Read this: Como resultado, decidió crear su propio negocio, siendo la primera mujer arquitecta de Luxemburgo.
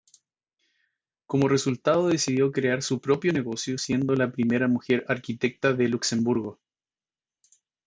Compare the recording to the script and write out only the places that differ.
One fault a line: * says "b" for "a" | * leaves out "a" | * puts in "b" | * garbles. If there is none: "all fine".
all fine